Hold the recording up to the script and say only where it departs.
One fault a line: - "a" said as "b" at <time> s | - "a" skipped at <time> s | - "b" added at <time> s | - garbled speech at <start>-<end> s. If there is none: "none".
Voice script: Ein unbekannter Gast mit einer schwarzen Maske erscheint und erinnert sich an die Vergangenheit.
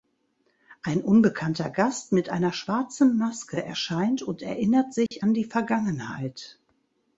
none